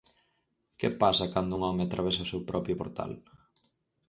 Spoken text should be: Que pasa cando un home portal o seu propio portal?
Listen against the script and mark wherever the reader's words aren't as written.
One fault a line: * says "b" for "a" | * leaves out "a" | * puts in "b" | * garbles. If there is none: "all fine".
* says "atravesa" for "portal"